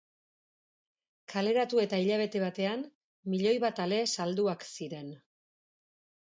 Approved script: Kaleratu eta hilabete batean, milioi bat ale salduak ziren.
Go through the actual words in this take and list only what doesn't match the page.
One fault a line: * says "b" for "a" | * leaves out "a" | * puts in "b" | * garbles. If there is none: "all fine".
all fine